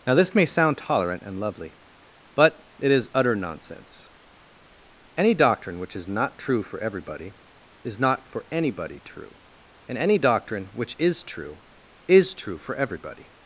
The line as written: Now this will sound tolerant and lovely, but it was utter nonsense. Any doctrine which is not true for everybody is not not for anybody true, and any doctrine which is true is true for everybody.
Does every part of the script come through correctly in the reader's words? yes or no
no